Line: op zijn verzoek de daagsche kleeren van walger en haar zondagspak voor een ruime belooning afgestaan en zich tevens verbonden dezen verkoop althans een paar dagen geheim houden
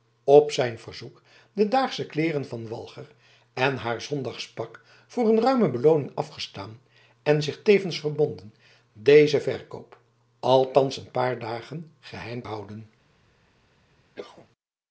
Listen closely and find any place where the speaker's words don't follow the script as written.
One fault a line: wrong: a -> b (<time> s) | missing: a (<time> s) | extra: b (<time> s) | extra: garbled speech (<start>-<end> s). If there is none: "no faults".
no faults